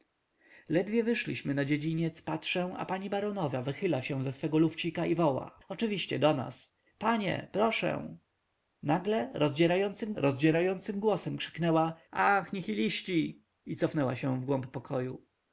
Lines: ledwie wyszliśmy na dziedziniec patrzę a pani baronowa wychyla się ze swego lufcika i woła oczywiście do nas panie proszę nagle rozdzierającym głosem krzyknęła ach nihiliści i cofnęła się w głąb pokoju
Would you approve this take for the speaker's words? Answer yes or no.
no